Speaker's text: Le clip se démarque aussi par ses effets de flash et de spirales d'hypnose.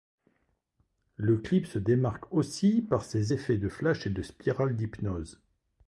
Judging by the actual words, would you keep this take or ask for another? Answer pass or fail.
pass